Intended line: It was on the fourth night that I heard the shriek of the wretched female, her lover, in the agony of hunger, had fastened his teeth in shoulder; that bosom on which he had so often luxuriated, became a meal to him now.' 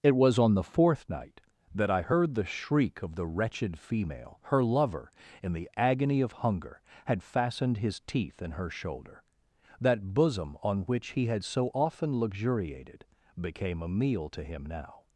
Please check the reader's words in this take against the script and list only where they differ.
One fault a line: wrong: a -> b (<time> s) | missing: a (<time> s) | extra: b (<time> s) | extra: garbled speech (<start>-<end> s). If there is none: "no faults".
extra: her (8.5 s)